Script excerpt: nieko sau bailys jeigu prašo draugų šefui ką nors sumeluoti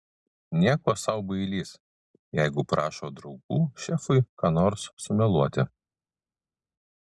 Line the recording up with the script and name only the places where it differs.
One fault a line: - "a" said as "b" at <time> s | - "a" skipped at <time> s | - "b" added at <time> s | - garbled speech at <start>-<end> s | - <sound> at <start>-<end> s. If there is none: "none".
none